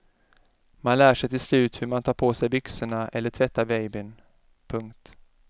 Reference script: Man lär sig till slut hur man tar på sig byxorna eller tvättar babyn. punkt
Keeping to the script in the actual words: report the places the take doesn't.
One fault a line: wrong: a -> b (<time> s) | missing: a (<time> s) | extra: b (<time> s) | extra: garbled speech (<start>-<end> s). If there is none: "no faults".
no faults